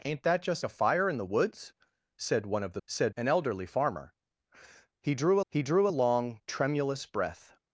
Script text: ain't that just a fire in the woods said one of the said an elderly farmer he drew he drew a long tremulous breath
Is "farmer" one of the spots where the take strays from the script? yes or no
no